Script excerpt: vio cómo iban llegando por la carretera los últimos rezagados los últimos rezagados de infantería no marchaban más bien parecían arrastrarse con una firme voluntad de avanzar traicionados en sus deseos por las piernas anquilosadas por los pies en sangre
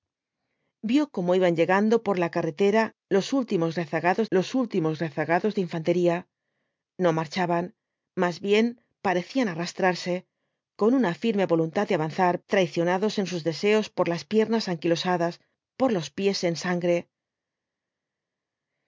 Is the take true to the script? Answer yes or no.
yes